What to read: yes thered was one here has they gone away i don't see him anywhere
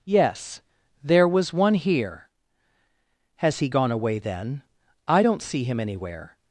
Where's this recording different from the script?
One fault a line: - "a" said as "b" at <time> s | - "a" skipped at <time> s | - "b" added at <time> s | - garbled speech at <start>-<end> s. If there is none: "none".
- "thered" said as "there" at 1.0 s
- "they" said as "he" at 3.6 s
- "then" added at 4.2 s